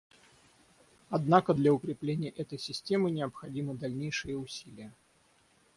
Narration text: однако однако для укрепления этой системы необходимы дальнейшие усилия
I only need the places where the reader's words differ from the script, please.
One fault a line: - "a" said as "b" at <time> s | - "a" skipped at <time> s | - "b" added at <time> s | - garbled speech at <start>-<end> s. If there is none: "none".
- "однако" skipped at 1.5 s